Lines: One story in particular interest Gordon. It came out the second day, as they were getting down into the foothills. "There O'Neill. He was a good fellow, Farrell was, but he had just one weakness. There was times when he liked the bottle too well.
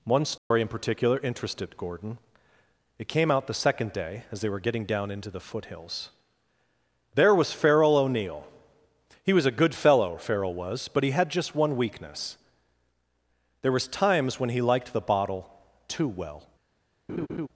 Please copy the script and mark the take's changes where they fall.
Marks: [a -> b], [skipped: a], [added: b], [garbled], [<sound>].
One story [dropout] in particular [interest -> interested] Gordon. It came out the second day, as they were getting down into the foothills. "There [added: was Farrell] O'Neill. He was a good fellow, Farrell was, but he had just one weakness. There was times when he liked the bottle too well. [laugh]